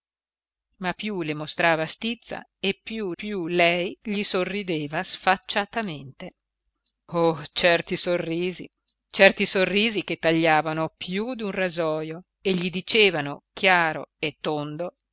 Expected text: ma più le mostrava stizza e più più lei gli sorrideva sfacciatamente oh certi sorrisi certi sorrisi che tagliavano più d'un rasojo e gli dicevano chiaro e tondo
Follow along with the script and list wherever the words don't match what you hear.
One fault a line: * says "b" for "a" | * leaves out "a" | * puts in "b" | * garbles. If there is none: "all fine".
all fine